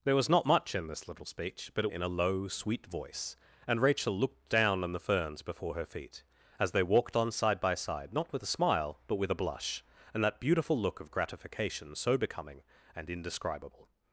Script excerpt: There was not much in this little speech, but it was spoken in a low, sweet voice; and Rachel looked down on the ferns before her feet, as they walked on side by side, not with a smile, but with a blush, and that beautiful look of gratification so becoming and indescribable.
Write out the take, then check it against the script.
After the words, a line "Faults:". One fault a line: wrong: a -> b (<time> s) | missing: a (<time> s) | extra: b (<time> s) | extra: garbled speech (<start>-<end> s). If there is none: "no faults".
There was not much in this little speech, but it in a low, sweet voice; and Rachel looked down on the ferns before her feet, as they walked on side by side, not with a smile, but with a blush, and that beautiful look of gratification so becoming and indescribable.
Faults:
missing: was spoken (1.9 s)